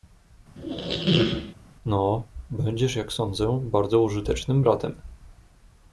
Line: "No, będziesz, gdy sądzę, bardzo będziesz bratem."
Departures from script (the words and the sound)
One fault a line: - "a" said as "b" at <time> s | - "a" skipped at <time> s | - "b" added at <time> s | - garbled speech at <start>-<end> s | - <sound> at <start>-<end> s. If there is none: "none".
- squeak at 0.5-1.5 s
- "gdy" said as "jak" at 3.0 s
- "będziesz" said as "użytecznym" at 4.0 s